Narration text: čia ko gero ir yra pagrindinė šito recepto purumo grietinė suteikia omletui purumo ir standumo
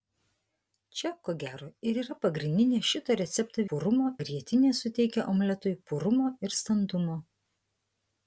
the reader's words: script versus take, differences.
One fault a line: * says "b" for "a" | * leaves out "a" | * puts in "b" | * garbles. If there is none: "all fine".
all fine